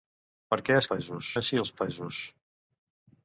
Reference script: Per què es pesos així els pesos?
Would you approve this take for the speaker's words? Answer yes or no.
yes